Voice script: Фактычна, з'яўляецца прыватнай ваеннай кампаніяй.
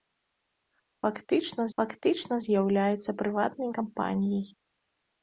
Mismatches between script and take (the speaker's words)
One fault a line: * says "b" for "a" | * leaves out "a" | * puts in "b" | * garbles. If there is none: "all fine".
* puts in "фактычна"
* leaves out "ваеннай"